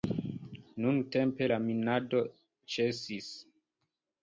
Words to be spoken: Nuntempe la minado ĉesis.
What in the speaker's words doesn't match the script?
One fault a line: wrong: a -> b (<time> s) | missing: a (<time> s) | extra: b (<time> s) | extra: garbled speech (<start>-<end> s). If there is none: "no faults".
no faults